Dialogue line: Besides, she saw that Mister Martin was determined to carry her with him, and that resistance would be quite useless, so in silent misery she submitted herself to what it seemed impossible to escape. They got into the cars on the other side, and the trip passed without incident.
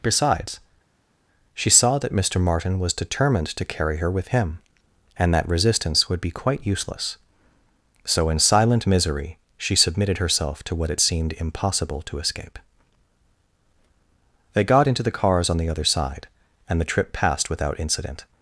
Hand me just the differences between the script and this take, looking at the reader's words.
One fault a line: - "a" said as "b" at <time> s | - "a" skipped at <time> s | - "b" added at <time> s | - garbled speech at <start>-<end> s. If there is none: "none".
none